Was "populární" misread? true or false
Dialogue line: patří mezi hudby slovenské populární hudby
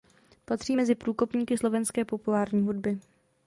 false